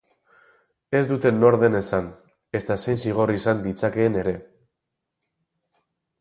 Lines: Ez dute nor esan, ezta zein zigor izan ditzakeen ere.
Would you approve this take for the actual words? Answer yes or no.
no